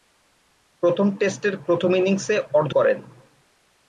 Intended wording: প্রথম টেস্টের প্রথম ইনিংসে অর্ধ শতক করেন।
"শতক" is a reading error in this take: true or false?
true